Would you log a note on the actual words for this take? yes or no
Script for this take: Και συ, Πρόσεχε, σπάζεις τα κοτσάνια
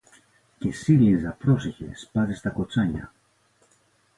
yes